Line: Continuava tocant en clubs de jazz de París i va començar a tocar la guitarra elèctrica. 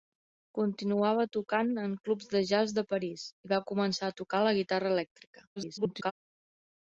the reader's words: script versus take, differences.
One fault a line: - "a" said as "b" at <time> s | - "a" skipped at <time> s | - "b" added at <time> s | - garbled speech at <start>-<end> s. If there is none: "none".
- garbled speech at 5.6-6.1 s